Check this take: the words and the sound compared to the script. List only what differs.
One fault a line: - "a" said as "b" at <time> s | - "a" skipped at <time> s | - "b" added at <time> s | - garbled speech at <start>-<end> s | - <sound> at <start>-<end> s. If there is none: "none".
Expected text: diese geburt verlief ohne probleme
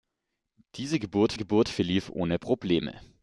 - "geburt" added at 1.4 s